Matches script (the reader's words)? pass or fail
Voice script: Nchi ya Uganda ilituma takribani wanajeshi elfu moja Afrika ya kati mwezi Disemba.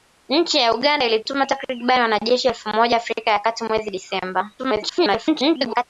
fail